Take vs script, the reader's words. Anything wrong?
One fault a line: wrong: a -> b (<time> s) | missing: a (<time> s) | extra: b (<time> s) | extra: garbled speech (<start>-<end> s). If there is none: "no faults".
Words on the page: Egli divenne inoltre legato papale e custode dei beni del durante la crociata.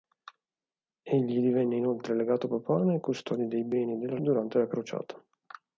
no faults